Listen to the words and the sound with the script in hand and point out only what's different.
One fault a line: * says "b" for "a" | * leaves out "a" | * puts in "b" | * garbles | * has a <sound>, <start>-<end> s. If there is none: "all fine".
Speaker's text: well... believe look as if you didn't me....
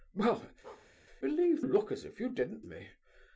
* has a bark, 0.6-0.9 s